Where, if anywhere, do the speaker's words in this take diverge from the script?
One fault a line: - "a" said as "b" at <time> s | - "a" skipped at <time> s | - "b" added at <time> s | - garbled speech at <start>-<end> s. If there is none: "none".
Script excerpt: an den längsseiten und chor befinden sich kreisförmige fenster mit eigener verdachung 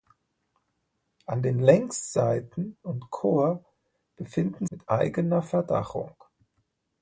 - "sich kreisförmige fenster" skipped at 4.7 s